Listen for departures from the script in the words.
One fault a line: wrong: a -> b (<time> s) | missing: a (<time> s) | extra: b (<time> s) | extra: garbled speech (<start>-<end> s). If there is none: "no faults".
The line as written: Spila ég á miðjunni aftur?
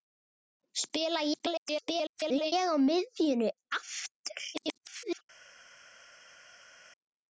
extra: garbled speech (1.3-2.5 s)
extra: garbled speech (4.5-5.2 s)